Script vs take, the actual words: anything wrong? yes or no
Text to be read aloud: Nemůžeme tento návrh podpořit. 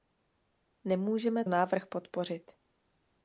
yes